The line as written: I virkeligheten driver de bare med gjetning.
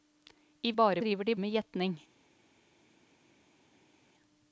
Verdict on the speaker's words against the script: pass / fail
fail